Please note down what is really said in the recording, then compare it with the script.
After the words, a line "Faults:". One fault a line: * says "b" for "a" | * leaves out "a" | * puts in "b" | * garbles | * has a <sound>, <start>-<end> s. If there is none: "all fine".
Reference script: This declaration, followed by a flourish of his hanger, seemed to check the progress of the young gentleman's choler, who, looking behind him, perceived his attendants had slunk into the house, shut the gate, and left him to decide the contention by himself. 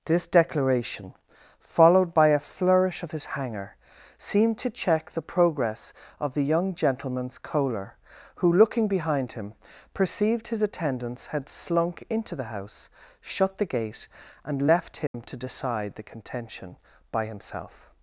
This declaration, followed by a flourish of his hanger, seemed to check the progress of the young gentleman's choler, who, looking behind him, perceived his attendants had slunk into the house, shut the gate, and left him to decide the contention by himself.
Faults:
* has a dropout, 15.1-15.1 s